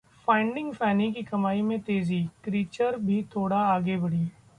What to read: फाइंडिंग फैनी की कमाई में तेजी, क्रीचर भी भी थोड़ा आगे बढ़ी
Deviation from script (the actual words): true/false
true